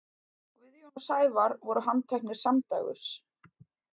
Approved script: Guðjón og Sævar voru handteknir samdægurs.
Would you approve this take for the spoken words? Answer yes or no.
yes